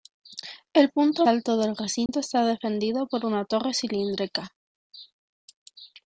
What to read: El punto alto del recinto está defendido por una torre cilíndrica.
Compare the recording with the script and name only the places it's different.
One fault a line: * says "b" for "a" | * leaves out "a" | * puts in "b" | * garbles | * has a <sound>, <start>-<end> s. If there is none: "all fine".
* has a dropout, 2.1-2.1 s